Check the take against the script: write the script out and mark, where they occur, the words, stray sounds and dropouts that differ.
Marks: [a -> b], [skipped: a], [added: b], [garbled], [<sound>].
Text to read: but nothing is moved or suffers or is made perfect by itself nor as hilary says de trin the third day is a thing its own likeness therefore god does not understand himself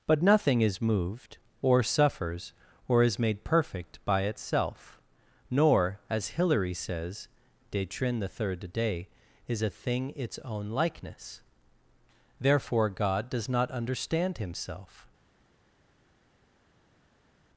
but nothing is moved or suffers or is made perfect by itself nor as hilary says de trin the third day is a thing its own likeness therefore god does not understand himself